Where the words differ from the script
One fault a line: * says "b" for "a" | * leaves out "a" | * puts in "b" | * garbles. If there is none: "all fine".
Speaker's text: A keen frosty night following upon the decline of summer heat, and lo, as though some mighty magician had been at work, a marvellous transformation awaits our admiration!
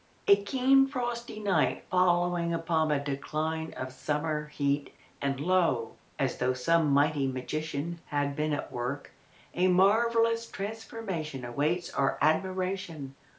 all fine